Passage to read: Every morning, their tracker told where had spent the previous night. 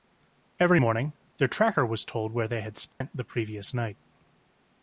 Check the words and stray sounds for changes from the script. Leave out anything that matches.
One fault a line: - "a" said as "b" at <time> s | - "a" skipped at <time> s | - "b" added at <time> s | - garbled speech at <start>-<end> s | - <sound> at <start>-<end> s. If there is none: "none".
- "was" added at 1.8 s
- "they" added at 2.5 s
- dropout at 2.9-3.0 s